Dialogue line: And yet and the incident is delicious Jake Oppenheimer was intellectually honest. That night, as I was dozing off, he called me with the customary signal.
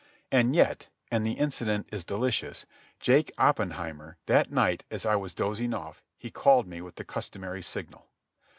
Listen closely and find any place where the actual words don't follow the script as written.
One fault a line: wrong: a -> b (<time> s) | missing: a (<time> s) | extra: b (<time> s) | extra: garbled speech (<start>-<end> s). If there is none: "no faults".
missing: was intellectually honest (4.2 s)